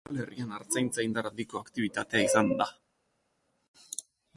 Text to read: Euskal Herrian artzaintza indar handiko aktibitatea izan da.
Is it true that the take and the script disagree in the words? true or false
false